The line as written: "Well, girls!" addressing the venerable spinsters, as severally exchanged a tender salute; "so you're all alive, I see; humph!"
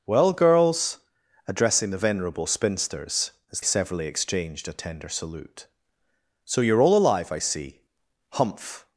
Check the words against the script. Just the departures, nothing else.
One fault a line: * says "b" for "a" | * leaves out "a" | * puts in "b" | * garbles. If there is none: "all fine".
all fine